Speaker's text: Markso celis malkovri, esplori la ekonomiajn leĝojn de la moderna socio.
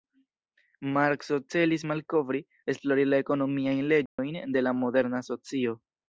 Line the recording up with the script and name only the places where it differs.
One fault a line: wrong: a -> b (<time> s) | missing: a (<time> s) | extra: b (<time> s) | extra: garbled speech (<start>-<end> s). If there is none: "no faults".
no faults